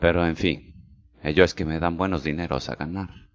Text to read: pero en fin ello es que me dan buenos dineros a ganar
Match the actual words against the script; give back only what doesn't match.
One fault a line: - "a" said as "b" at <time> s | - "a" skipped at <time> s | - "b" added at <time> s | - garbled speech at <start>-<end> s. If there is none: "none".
none